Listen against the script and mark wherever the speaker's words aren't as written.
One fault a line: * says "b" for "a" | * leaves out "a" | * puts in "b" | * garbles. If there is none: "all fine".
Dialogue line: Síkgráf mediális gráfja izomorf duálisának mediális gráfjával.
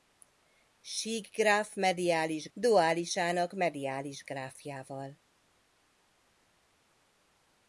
* leaves out "gráfja izomorf"